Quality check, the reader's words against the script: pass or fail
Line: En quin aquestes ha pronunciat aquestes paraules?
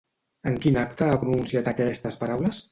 fail